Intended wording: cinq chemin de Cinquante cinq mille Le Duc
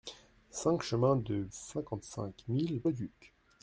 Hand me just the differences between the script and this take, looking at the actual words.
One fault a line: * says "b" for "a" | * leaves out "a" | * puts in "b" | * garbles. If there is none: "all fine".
all fine